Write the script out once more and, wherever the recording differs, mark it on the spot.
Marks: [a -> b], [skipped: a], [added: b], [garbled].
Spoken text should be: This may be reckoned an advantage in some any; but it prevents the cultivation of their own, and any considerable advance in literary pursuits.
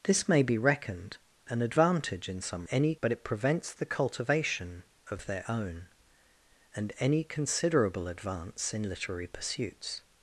This may be reckoned an advantage in some any; but it prevents the cultivation of their own, and any considerable advance in literary pursuits.